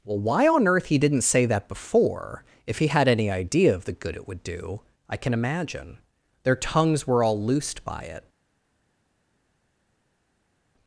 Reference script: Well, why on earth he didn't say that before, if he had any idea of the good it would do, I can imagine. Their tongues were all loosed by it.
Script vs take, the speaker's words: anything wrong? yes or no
no